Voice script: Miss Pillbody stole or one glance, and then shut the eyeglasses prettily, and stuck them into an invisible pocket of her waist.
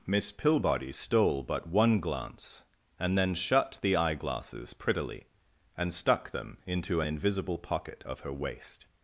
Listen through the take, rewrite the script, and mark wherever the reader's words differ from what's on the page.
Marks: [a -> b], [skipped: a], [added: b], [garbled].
Miss Pillbody stole [or -> but] one glance, and then shut the eyeglasses prettily, and stuck them into an invisible pocket of her waist.